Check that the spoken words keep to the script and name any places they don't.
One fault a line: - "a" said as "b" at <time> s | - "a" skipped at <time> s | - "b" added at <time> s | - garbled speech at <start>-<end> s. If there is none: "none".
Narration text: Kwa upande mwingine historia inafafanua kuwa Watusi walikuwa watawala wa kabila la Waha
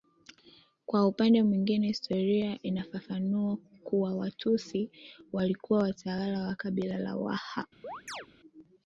none